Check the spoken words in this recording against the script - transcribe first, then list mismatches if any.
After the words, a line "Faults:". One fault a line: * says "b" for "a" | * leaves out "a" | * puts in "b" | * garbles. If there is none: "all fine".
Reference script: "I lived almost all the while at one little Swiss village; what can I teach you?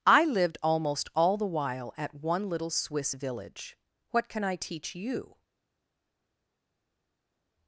"I lived almost all the while at one little Swiss village; what can I teach you?
Faults:
all fine